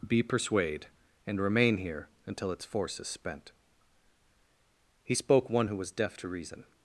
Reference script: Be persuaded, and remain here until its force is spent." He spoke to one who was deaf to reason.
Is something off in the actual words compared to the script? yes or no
yes